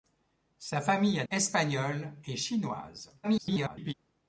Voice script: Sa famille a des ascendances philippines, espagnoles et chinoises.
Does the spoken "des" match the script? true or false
false